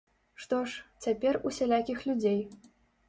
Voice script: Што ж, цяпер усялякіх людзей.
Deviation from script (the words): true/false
false